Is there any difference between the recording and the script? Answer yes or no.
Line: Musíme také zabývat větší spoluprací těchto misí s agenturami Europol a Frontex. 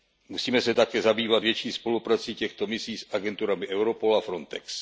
yes